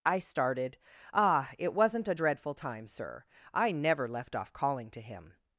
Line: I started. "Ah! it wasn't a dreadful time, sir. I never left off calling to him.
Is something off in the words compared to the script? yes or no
no